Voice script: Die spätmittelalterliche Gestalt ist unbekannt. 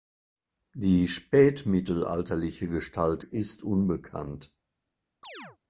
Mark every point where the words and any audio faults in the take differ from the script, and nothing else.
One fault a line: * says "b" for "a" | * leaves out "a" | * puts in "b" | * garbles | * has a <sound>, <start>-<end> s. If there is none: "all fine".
* has a chirp, 5.2-5.6 s